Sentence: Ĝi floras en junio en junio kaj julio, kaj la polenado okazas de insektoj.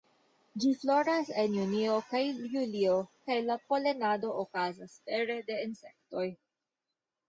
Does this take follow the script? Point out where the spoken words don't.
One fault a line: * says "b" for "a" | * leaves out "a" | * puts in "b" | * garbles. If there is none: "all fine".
* leaves out "en junio"
* puts in "pere"